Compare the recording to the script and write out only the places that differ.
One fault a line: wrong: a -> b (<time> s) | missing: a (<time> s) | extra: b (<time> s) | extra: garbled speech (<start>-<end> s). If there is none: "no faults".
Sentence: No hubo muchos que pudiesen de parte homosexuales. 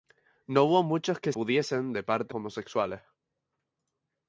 no faults